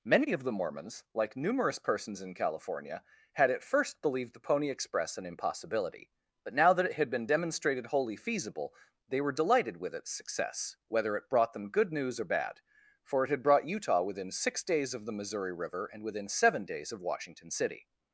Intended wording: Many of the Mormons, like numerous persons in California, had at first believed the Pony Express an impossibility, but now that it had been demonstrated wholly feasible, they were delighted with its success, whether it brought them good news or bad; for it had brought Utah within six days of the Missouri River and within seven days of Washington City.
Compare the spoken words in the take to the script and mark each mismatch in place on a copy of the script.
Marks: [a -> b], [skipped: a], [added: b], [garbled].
Many of the Mormons, like numerous persons in California, had at first believed the Pony Express an impossibility, but now that it had been demonstrated wholly feasible, they were delighted with its success, whether it brought them good news or bad; for it had brought Utah within six days of the Missouri River and within seven days of Washington City.